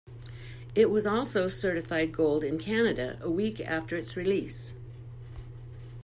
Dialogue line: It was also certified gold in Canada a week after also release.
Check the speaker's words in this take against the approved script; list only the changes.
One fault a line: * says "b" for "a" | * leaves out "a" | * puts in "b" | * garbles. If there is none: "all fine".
* says "its" for "also"